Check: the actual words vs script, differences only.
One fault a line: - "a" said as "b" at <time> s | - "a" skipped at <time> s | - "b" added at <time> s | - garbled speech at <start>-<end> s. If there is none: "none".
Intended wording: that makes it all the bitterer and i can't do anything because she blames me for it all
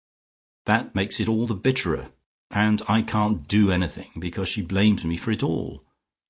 none